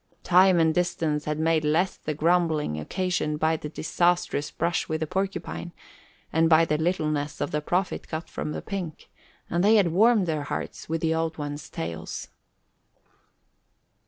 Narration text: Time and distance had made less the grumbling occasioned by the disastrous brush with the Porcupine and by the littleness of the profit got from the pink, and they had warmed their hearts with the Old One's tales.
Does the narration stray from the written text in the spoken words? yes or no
no